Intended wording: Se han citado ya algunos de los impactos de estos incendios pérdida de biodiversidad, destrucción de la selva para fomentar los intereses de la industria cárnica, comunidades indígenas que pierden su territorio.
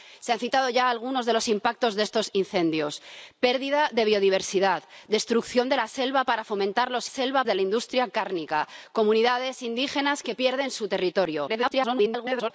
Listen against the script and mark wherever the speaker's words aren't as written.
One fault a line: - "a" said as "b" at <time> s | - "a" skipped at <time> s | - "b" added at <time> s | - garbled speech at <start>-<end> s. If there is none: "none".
- "intereses" said as "selva" at 7.1 s
- garbled speech at 11.5-12.5 s